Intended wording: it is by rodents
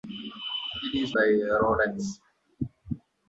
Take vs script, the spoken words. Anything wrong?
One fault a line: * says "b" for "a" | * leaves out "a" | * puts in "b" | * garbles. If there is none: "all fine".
all fine